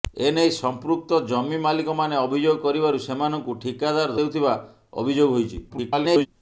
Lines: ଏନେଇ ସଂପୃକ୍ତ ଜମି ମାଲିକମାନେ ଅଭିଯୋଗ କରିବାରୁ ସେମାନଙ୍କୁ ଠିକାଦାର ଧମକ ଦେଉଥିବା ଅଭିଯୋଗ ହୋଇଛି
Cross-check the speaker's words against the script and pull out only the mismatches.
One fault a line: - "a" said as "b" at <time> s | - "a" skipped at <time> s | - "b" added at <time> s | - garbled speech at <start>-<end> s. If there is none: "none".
- "ଧମକ" skipped at 4.2 s
- garbled speech at 5.7-6.3 s